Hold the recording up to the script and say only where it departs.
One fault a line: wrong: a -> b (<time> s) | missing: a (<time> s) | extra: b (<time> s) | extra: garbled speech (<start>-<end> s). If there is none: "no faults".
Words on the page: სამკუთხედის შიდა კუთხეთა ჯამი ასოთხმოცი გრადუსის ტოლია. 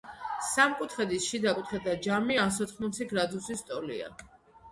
no faults